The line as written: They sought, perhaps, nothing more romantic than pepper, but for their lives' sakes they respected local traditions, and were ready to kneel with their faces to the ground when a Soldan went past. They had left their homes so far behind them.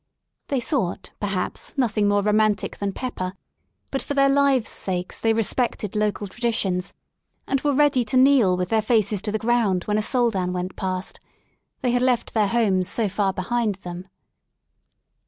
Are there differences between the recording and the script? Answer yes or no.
no